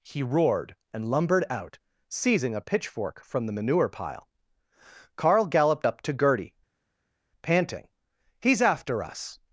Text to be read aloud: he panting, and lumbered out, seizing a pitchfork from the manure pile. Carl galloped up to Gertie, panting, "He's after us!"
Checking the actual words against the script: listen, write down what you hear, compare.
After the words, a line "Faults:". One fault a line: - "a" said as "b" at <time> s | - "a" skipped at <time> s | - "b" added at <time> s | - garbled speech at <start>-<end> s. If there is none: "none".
he roared, and lumbered out, seizing a pitchfork from the manure pile. Carl galloped up to Gertie, panting, "He's after us!"
Faults:
- "panting" said as "roared" at 0.2 s